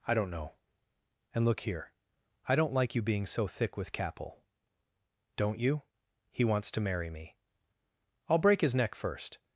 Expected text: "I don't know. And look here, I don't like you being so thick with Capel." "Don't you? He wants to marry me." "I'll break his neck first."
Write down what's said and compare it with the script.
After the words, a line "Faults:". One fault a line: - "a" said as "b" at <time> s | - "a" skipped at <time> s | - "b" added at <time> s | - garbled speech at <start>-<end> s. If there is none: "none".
"I don't know. And look here, I don't like you being so thick with Capel." "Don't you? He wants to marry me." "I'll break his neck first."
Faults:
none